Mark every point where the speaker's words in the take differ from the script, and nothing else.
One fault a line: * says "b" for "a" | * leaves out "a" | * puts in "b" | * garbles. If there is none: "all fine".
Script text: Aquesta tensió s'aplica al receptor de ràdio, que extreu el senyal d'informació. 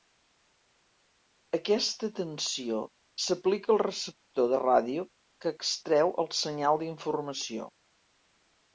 all fine